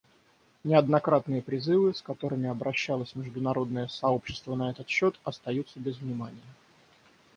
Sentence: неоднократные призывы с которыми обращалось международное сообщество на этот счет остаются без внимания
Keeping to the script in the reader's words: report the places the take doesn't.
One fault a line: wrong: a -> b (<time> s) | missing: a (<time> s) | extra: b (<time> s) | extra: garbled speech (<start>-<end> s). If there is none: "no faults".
no faults